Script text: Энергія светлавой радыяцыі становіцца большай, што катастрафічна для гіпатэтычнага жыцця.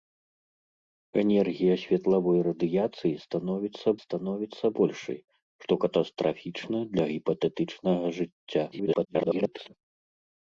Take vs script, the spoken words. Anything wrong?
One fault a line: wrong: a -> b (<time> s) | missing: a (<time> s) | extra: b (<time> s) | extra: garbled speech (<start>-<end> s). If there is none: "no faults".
extra: становіцца (4.0 s)
extra: garbled speech (8.7-9.7 s)